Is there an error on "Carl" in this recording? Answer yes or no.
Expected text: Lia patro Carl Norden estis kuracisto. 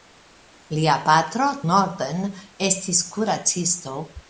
yes